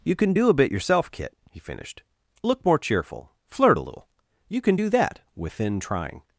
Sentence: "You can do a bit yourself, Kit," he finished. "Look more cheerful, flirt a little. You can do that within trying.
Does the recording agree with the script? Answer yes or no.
yes